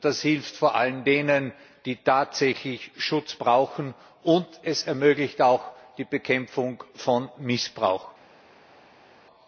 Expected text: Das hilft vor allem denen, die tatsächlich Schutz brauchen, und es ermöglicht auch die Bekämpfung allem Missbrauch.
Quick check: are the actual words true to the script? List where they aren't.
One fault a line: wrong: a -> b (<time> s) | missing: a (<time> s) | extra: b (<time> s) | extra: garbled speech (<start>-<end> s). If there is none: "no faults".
wrong: allem -> von (6.9 s)